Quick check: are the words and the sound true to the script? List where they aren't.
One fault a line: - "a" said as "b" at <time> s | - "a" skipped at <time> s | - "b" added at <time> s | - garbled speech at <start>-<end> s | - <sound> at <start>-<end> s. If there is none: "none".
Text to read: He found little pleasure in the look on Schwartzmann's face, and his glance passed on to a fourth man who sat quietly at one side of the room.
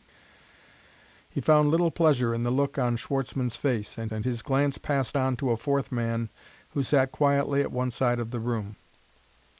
- "and" added at 4.1 s